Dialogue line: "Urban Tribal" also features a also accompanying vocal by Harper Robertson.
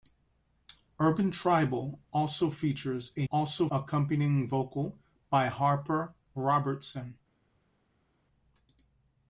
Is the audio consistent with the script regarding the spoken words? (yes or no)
yes